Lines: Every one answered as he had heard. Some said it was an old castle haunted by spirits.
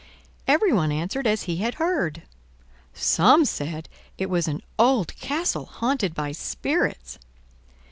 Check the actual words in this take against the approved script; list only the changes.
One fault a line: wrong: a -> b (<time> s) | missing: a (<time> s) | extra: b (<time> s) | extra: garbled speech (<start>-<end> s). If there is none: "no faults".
no faults